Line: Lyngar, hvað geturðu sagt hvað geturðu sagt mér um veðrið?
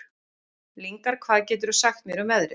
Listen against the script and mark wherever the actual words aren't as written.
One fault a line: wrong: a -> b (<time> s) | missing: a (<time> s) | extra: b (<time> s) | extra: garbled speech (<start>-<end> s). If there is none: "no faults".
missing: hvað geturðu sagt (2.0 s)